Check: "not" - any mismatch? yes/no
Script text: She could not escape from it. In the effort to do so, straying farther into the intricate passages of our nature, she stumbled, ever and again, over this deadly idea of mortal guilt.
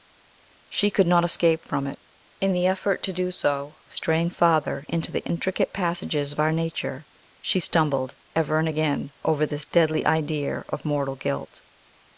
no